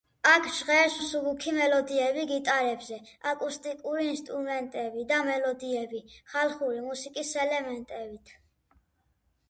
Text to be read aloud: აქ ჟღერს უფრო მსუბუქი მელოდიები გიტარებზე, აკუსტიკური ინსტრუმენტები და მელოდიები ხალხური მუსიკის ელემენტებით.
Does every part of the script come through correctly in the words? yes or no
no